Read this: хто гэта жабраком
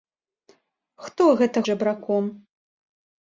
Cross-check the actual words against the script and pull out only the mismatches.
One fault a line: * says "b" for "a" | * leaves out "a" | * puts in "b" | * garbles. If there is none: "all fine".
all fine